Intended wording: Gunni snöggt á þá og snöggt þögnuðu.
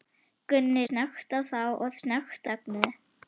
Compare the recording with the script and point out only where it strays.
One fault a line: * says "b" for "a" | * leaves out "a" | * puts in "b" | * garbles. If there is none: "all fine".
all fine